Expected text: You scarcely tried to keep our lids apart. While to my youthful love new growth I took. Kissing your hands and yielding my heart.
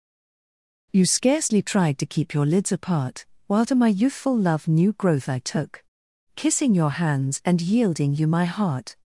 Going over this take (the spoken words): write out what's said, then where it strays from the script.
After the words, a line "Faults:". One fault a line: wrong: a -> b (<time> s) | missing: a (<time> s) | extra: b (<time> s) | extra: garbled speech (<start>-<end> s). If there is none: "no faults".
You scarcely tried to keep your lids apart. While to my youthful love new growth I took. Kissing your hands and yielding you my heart.
Faults:
wrong: our -> your (2.3 s)
extra: you (8.1 s)